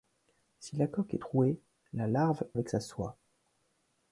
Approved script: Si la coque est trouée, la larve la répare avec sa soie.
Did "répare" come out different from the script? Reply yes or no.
yes